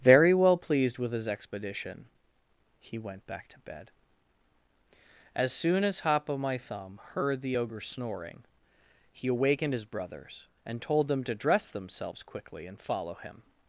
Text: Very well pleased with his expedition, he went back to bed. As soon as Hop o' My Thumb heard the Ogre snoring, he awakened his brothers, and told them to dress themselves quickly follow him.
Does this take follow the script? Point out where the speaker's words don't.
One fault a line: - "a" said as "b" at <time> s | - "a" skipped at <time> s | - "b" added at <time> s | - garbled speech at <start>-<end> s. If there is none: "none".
- "and" added at 12.7 s